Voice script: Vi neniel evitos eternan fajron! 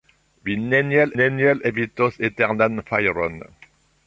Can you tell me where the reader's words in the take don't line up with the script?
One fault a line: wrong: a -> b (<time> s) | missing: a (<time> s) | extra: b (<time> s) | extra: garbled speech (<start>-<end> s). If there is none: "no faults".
extra: neniel (1.2 s)